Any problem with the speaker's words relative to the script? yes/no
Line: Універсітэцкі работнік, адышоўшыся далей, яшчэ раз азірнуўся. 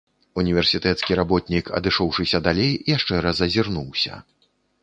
no